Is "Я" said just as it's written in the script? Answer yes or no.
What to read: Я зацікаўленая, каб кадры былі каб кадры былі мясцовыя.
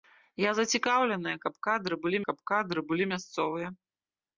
yes